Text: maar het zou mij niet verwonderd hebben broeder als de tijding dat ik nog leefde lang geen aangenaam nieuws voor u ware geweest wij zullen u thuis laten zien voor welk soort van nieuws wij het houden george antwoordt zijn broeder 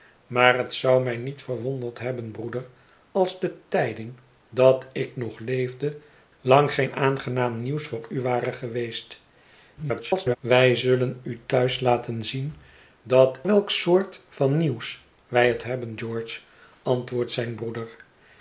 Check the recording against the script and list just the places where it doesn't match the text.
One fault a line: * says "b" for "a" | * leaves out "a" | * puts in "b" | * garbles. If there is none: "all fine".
* garbles
* says "dat" for "voor"
* says "hebben" for "houden"